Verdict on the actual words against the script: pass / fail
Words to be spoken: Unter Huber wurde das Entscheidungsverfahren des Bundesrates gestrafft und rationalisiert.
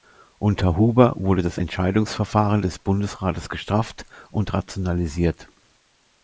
pass